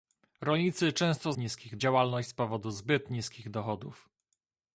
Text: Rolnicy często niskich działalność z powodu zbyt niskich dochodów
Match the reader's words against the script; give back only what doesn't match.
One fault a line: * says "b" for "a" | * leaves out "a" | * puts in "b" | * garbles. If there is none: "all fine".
all fine